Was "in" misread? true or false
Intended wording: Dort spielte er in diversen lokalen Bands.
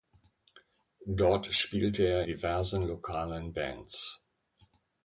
true